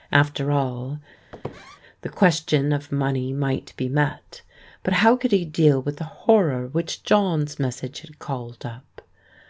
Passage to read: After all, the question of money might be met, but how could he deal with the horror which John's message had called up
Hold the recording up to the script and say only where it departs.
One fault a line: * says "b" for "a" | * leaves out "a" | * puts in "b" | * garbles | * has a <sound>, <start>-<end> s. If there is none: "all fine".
* has a squeak, 1.3-1.8 s